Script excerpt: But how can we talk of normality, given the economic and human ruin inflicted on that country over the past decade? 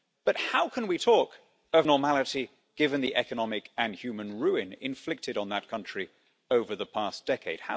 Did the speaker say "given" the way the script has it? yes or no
yes